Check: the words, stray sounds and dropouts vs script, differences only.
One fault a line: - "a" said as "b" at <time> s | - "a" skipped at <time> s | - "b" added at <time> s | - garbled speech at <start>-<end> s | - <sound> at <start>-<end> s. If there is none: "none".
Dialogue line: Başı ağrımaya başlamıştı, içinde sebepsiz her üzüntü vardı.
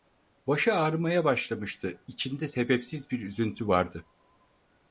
- "her" said as "bir" at 3.1 s